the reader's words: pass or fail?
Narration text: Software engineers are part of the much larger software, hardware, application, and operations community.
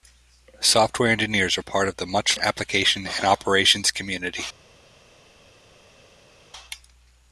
fail